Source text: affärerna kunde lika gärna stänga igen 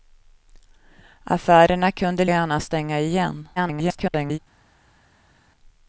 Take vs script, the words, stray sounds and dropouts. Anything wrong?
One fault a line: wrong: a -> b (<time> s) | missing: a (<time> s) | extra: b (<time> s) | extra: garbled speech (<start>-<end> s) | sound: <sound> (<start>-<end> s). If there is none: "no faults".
missing: lika (2.2 s)
extra: garbled speech (3.6-4.4 s)